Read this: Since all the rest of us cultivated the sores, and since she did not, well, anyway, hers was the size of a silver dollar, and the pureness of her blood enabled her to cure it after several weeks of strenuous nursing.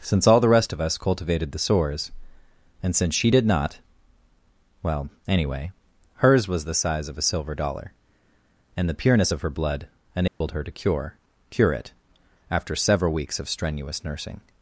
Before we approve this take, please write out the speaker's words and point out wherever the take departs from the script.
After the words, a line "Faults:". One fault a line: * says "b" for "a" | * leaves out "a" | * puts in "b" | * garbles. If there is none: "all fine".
Since all the rest of us cultivated the sores, and since she did not, well, anyway, hers was the size of a silver dollar, and the pureness of her blood enabled her to cure cure it after several weeks of strenuous nursing.
Faults:
* puts in "cure"